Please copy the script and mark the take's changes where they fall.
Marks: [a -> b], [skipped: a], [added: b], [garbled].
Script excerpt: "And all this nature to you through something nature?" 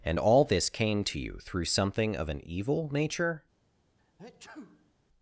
"And all this [nature -> came] to you through something [added: of an evil] nature?"